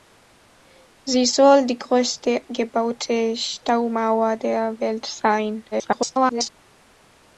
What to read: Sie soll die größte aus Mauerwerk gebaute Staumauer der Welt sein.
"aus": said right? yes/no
no